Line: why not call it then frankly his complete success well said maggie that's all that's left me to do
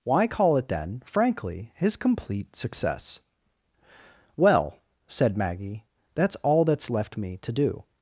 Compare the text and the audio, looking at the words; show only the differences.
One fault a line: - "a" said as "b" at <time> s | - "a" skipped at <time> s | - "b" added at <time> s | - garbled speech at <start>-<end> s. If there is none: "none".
- "not" skipped at 0.2 s